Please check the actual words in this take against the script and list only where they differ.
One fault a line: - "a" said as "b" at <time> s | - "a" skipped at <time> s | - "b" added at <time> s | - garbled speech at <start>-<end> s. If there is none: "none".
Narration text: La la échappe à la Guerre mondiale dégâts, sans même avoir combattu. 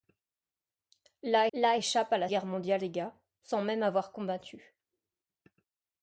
none